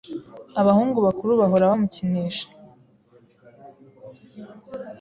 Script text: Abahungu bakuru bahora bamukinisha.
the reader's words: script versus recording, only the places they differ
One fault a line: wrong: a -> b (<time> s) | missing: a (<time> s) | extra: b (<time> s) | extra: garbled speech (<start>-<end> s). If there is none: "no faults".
no faults